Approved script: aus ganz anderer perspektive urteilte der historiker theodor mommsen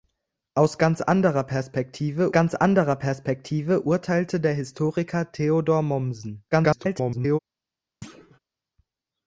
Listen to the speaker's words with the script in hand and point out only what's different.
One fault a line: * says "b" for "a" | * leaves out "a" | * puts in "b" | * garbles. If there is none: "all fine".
* puts in "ganz anderer perspektive"
* garbles